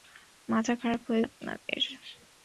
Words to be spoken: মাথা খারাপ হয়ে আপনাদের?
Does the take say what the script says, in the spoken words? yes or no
yes